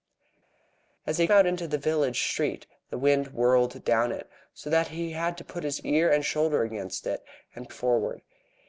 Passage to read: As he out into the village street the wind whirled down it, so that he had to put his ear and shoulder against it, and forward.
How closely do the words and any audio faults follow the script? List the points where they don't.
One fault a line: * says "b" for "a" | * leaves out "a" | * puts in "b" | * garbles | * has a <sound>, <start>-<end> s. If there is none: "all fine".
all fine